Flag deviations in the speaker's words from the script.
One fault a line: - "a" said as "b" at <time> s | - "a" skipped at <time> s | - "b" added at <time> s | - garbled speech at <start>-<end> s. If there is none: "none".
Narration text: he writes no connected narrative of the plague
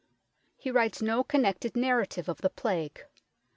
none